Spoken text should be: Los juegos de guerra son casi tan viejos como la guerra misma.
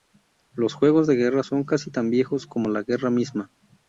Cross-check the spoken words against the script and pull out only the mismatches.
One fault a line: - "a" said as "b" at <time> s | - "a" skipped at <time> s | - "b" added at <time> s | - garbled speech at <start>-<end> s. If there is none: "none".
none